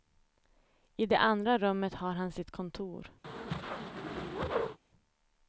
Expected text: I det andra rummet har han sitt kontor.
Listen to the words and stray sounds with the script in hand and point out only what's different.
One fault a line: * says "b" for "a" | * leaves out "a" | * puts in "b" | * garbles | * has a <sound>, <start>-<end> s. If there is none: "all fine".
* has a whoosh, 3.2-4.8 s